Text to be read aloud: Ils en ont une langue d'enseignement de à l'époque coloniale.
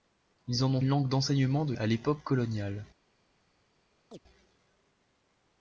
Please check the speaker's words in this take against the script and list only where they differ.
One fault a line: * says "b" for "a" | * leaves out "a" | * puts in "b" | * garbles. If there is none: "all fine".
all fine